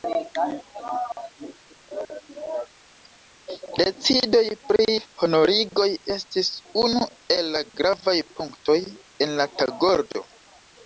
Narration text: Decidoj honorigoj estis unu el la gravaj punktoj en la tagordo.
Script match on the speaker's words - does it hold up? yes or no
no